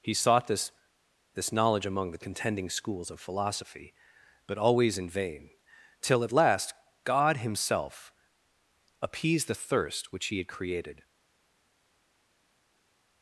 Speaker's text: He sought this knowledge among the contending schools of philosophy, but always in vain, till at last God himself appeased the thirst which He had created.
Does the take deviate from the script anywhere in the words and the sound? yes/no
yes